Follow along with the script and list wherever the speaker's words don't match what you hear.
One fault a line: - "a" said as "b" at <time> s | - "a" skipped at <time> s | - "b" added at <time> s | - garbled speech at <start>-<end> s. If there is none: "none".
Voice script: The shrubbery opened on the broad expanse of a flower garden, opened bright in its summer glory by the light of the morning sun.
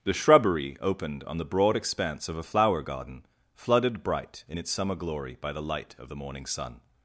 - "opened" said as "flooded" at 3.5 s